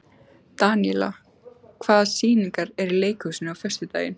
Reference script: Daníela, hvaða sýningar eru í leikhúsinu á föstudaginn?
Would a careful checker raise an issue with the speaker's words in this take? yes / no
no